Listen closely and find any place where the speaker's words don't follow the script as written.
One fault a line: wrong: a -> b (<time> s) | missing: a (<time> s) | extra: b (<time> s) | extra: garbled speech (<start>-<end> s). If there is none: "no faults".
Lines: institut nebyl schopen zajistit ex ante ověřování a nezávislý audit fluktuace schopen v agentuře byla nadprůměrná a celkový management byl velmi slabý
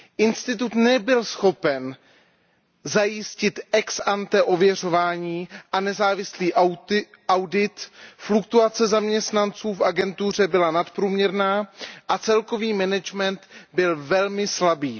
wrong: schopen -> zaměstnanců (8.9 s)